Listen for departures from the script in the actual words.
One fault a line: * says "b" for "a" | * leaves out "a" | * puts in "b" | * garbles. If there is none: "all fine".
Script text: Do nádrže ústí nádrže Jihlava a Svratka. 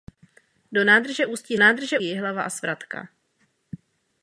all fine